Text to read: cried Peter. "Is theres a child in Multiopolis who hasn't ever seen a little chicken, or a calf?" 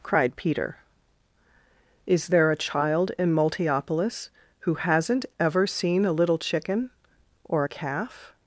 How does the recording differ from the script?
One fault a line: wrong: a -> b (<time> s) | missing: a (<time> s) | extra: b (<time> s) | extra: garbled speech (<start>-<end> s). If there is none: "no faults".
wrong: theres -> there (2.3 s)